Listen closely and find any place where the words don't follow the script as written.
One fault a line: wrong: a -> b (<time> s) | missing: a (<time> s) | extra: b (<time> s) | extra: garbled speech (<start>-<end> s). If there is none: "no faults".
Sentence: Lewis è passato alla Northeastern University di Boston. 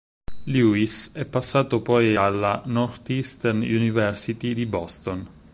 extra: poi (1.8 s)